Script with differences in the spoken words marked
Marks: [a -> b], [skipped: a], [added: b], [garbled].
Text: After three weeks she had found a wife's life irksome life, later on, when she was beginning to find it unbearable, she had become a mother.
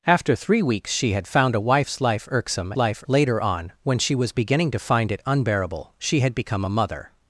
After three weeks she had found a wife's life irksome life, later on, when she was beginning to find it unbearable, she had become a mother.